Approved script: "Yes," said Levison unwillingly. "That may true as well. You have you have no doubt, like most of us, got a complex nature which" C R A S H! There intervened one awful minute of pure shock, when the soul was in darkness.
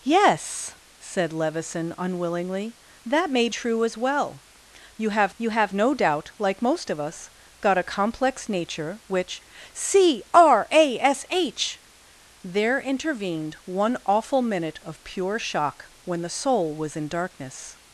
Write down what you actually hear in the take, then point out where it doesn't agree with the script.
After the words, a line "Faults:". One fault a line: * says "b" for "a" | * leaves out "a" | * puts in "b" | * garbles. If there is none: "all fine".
"Yes," said Levison unwillingly. "That may true as well. You have you have no doubt, like most of us, got a complex nature which" C R A S H! There intervened one awful minute of pure shock, when the soul was in darkness.
Faults:
all fine